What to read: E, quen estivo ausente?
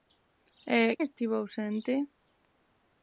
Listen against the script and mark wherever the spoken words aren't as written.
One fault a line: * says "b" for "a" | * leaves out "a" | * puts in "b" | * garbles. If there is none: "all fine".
* leaves out "quen"